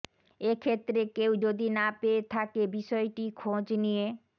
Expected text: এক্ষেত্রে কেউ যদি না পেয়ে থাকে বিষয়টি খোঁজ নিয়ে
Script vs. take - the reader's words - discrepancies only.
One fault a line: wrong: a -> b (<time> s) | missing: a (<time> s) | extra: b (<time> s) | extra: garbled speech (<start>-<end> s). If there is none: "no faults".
no faults